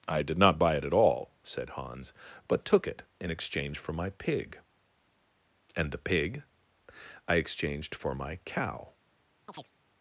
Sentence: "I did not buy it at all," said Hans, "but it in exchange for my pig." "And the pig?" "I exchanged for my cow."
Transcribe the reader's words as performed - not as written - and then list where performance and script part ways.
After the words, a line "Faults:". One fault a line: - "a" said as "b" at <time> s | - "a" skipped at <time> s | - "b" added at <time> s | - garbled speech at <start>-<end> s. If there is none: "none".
"I did not buy it at all," said Hans, "but took it in exchange for my pig." "And the pig?" "I exchanged for my cow."
Faults:
- "took" added at 2.6 s